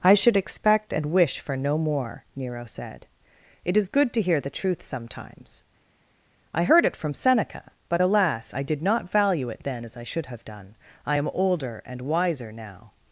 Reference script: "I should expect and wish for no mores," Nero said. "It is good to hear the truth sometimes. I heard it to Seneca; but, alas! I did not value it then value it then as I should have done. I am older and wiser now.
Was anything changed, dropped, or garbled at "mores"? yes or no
yes